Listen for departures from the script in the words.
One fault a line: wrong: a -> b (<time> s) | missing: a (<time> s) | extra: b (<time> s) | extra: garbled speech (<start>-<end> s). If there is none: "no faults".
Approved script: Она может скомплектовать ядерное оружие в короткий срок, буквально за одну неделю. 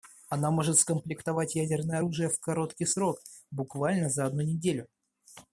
no faults